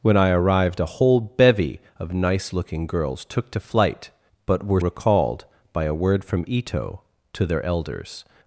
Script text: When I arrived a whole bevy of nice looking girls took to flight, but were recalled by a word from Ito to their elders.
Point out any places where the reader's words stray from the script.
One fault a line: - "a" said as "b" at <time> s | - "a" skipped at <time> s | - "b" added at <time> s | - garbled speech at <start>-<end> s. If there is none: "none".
none